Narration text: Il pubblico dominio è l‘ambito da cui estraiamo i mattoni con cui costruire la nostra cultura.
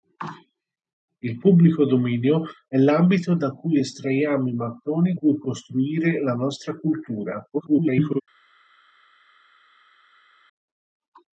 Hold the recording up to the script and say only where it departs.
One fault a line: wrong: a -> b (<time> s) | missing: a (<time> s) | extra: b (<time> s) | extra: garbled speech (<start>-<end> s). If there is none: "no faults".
missing: con (5.1 s)
extra: garbled speech (7.5-8.2 s)